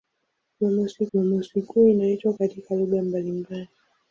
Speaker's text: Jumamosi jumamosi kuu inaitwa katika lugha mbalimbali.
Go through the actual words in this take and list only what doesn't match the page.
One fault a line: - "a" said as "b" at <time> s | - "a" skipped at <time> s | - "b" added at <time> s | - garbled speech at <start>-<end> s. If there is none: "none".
none